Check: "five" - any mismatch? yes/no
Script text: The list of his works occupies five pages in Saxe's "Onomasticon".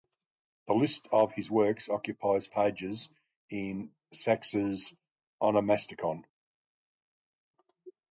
yes